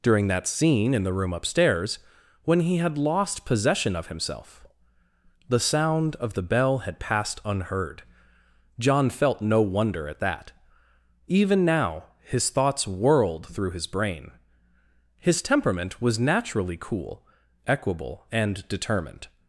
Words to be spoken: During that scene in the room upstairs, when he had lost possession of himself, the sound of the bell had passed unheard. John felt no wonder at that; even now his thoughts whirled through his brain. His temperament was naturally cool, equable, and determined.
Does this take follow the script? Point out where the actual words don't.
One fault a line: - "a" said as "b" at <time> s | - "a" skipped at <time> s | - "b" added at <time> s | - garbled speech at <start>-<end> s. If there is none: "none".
none